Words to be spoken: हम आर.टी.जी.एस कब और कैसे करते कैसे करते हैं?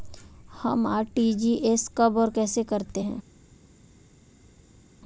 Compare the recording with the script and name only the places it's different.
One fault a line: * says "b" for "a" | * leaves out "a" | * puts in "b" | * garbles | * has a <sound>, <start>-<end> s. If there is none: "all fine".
* leaves out "कैसे करते"